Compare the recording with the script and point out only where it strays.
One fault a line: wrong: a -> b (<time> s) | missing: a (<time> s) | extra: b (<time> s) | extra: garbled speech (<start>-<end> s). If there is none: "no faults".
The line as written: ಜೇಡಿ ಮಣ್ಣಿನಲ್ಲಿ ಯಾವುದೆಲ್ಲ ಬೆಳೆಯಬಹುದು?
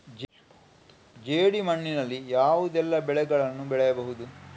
extra: ಬೆಳೆಗಳನ್ನು (3.0 s)